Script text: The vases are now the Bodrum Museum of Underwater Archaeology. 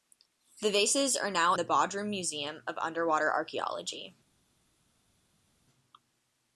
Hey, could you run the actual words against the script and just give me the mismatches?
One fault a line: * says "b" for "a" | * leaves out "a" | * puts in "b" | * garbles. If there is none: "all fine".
all fine